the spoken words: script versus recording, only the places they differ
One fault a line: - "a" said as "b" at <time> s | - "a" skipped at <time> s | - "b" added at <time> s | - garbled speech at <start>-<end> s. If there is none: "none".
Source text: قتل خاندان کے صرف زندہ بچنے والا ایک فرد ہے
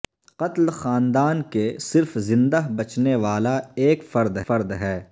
- "فرد" added at 4.5 s